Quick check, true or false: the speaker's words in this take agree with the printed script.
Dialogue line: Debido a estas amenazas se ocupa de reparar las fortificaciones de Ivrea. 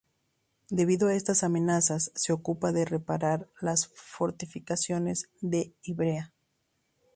true